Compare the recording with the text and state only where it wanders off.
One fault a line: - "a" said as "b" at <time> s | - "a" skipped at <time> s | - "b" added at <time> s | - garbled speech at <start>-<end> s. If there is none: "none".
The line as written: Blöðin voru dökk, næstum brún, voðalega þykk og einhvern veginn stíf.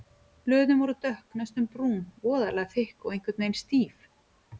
none